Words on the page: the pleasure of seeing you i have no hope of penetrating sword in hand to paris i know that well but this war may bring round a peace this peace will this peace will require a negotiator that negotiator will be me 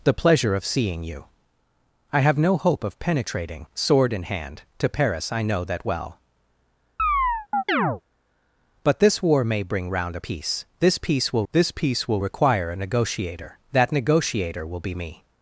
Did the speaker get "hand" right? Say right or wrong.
right